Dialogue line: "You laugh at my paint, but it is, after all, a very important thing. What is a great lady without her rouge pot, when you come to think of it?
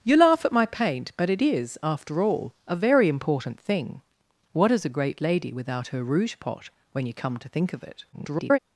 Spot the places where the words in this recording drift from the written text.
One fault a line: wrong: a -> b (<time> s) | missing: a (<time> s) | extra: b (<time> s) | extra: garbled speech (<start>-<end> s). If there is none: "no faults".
extra: garbled speech (8.1-8.6 s)